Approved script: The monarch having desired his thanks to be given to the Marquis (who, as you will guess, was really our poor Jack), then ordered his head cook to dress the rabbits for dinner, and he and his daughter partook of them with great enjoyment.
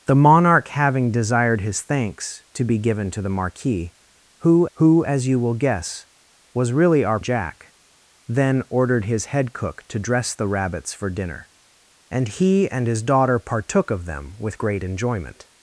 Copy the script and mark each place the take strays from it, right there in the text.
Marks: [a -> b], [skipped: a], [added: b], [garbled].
The monarch having desired his thanks to be given to the Marquis (who, [added: who] as you will guess, was really our [skipped: poor] Jack), then ordered his head cook to dress the rabbits for dinner, and he and his daughter partook of them with great enjoyment.